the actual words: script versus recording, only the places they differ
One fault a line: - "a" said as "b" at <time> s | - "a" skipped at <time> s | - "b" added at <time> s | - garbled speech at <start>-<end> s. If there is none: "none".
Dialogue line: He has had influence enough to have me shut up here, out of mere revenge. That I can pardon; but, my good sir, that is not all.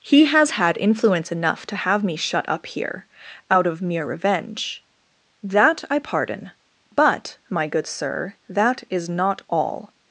- "can" skipped at 6.0 s